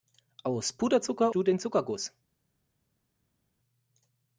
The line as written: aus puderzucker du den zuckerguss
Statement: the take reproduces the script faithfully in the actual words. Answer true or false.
true